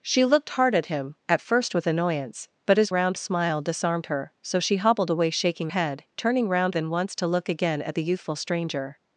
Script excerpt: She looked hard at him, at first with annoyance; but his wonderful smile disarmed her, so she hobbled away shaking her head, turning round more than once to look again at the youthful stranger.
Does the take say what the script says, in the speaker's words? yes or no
no